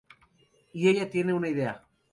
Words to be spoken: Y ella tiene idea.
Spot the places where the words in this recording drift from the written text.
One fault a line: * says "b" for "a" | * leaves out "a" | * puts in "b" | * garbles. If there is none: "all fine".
* puts in "una"